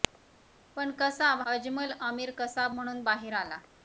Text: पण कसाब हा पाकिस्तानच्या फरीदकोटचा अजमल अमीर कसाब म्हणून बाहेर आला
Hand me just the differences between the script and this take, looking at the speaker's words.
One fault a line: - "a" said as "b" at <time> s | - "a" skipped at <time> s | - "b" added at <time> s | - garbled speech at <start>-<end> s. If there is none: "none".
- "हा पाकिस्तानच्या फरीदकोटचा" skipped at 1.4 s